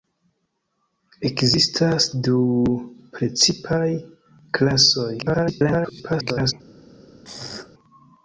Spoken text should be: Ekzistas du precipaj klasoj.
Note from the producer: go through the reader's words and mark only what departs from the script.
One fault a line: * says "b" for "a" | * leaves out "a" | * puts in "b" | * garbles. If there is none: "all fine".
* garbles